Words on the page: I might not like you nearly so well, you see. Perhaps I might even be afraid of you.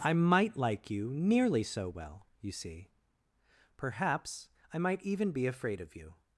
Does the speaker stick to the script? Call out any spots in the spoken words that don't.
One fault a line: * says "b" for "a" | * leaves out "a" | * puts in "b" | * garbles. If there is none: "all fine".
* leaves out "not"